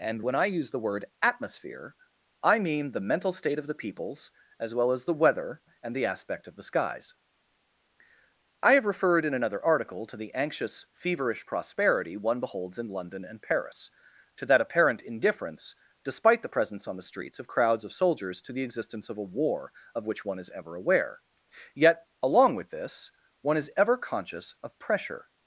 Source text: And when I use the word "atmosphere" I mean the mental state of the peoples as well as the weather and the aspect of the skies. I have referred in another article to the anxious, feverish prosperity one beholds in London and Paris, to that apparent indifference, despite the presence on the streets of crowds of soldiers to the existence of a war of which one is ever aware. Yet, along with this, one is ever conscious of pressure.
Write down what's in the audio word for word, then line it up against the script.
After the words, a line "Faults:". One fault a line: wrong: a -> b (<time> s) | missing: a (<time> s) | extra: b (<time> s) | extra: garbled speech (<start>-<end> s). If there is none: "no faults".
And when I use the word "atmosphere" I mean the mental state of the peoples as well as the weather and the aspect of the skies. I have referred in another article to the anxious, feverish prosperity one beholds in London and Paris, to that apparent indifference, despite the presence on the streets of crowds of soldiers to the existence of a war of which one is ever aware. Yet, along with this, one is ever conscious of pressure.
Faults:
no faults